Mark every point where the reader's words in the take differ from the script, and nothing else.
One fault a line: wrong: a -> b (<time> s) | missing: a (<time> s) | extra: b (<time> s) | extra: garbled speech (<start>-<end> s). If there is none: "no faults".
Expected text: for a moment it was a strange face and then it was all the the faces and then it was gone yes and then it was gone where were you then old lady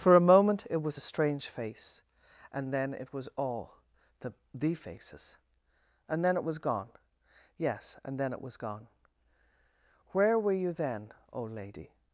no faults